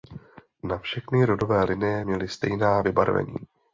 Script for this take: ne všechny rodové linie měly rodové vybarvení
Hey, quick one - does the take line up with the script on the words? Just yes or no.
no